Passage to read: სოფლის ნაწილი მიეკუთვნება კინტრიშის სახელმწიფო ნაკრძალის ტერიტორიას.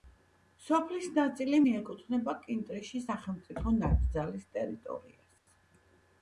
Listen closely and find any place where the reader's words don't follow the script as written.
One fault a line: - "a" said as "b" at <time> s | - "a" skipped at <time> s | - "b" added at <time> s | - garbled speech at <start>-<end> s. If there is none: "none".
none